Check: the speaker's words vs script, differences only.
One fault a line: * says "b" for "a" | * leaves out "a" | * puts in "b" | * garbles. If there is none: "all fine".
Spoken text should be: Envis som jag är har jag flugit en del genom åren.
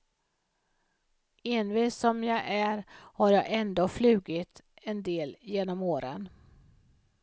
* puts in "ändå"